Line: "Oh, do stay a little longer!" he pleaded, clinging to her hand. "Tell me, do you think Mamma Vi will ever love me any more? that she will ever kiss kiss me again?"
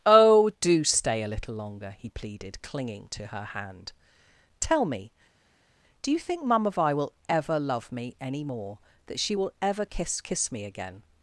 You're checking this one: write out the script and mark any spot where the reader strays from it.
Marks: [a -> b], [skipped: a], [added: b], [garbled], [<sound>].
"Oh, do stay a little longer!" he pleaded, clinging to her hand. "Tell me, do you think Mamma Vi will ever love me any more? that she will ever kiss kiss me again?"